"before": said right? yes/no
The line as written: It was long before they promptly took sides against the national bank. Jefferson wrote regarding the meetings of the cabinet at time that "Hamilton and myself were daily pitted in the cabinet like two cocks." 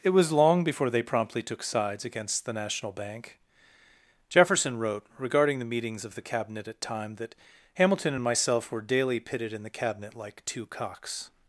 yes